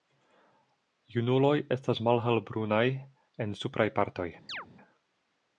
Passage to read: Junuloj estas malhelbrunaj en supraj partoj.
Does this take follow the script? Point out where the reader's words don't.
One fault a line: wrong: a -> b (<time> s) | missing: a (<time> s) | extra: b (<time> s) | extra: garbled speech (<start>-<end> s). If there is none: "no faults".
no faults